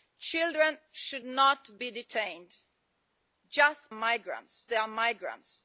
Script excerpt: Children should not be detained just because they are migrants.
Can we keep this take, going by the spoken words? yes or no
no